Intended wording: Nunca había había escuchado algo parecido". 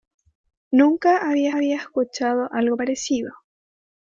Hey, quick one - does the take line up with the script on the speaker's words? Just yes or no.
yes